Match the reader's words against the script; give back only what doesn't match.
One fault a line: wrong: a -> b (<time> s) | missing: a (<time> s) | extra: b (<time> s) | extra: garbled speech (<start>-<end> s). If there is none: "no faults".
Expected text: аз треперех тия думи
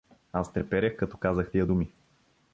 extra: като казах (1.0 s)